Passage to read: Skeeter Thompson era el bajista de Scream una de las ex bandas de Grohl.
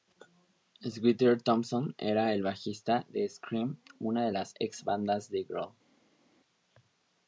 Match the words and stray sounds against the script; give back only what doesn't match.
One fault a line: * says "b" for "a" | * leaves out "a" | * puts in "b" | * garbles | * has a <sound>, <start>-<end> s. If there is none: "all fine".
all fine